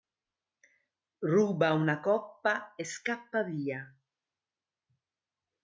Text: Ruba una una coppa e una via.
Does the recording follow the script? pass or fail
fail